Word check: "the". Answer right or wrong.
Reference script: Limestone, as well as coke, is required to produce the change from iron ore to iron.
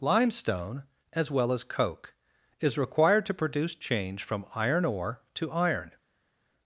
wrong